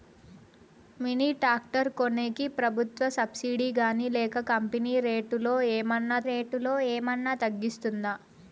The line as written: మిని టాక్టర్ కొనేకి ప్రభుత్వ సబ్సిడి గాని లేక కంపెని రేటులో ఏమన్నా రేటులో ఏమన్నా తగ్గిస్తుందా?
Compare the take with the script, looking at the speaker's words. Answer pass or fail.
pass